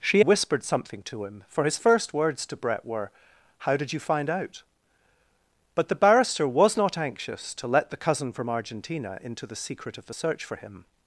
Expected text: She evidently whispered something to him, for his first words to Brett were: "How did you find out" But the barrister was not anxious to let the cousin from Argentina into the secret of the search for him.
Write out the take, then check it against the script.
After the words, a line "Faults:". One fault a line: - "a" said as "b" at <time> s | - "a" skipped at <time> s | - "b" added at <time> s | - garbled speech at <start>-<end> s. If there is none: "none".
She whispered something to him, for his first words to Brett were: "How did you find out" But the barrister was not anxious to let the cousin from Argentina into the secret of the search for him.
Faults:
- "evidently" skipped at 0.2 s